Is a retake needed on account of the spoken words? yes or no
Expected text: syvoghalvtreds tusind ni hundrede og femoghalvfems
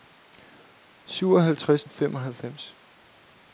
yes